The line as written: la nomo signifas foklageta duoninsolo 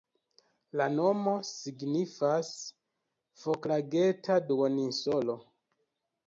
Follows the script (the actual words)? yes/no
yes